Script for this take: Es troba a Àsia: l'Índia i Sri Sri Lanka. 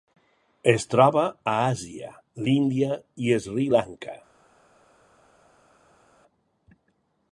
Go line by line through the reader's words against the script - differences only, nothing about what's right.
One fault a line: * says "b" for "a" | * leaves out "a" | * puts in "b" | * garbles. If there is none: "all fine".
* leaves out "Sri"